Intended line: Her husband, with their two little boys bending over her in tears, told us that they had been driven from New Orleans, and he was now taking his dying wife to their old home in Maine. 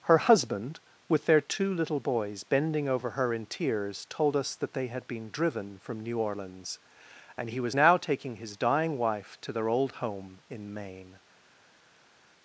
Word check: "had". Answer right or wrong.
right